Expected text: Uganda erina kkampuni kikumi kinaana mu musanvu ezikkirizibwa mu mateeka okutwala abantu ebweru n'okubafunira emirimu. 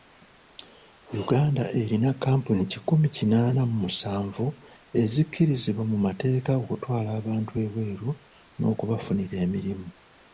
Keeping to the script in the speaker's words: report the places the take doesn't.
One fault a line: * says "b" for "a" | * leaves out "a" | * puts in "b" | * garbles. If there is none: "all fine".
all fine